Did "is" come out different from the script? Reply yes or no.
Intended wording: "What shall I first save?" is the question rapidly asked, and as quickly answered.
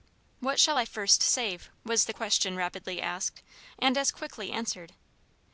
yes